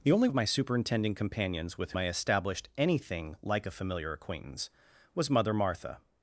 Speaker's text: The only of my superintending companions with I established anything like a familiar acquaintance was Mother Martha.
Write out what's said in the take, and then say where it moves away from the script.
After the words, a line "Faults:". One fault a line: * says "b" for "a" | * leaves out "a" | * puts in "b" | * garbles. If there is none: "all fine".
The only of my superintending companions with I established anything like a familiar acquaintance was Mother Martha.
Faults:
all fine